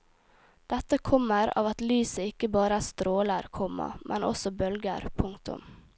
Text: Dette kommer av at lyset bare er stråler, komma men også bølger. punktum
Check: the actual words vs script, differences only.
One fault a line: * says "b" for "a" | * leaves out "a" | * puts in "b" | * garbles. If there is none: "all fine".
* puts in "ikke"